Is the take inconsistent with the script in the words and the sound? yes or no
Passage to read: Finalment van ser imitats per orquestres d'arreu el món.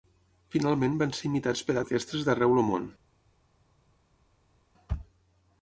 no